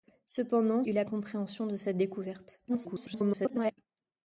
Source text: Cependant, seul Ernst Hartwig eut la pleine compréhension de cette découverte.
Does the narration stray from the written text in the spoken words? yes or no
yes